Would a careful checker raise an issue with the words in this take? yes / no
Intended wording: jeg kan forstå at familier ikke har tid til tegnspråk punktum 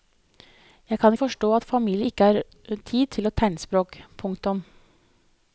no